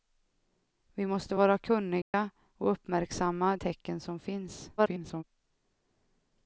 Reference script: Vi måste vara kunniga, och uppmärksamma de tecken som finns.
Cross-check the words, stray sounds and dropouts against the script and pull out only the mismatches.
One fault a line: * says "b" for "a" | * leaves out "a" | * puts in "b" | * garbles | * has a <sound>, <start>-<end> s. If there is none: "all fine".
* has a dropout, 2.0-2.1 s
* leaves out "de"
* garbles